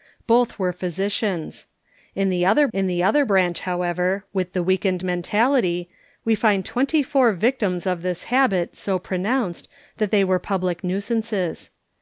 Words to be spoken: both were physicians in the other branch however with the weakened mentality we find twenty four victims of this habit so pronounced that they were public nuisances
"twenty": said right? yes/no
yes